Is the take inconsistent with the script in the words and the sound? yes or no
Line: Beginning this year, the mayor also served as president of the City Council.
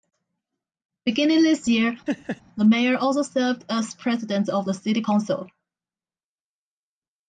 yes